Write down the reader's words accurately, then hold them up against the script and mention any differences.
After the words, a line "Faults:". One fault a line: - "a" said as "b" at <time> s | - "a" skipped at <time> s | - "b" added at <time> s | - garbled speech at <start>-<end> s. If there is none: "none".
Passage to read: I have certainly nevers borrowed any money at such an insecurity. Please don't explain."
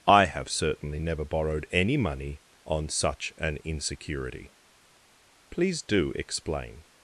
I have certainly never borrowed any money on such an insecurity. Please do explain."
Faults:
- "nevers" said as "never" at 1.0 s
- "at" said as "on" at 2.7 s
- "don't" said as "do" at 5.8 s